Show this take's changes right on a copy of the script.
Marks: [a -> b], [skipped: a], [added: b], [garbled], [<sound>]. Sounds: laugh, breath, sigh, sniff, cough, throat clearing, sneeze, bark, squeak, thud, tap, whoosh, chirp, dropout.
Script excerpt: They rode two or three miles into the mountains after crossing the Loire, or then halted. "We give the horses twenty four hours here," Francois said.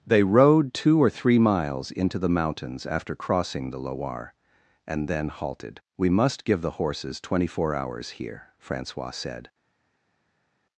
They rode two or three miles into the mountains after crossing the Loire, [or -> and] then halted. "We [added: must] give the horses twenty four hours here," Francois said.